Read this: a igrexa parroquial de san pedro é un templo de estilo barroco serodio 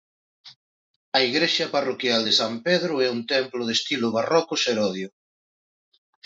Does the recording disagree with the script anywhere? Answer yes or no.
no